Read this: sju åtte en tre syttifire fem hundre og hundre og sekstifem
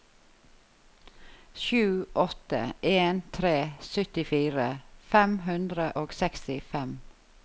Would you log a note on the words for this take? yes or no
yes